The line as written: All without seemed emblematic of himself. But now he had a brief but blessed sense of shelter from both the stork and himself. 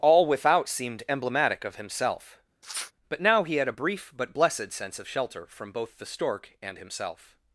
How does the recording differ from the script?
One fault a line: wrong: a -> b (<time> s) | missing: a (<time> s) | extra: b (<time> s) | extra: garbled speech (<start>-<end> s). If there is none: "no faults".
no faults